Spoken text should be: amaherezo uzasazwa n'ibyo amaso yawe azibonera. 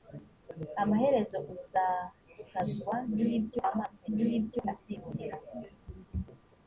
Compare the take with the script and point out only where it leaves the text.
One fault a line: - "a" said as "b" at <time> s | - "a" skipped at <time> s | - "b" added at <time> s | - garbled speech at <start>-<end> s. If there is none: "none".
- "yawe" said as "n'ibyo" at 4.2 s